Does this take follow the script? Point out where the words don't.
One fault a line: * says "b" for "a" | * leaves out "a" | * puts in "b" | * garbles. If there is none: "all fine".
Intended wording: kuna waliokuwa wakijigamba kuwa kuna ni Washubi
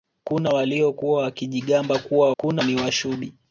all fine